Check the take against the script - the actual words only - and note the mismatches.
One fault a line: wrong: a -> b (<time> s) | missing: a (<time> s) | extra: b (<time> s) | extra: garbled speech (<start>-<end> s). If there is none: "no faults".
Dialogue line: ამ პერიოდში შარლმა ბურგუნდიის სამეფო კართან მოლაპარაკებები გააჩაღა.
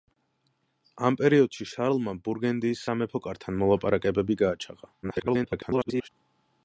extra: garbled speech (5.0-6.1 s)